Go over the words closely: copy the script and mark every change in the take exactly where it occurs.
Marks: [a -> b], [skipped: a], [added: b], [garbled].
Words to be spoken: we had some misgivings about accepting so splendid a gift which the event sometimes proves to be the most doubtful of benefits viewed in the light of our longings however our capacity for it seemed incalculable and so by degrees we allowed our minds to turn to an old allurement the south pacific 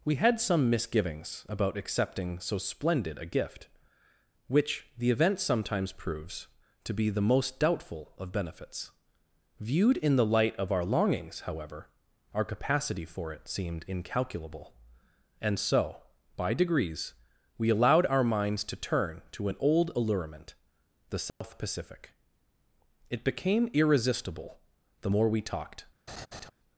we had some misgivings about accepting so splendid a gift which the event sometimes proves to be the most doubtful of benefits viewed in the light of our longings however our capacity for it seemed incalculable and so by degrees we allowed our minds to turn to an old allurement the south pacific [added: it became irresistible the more we talked]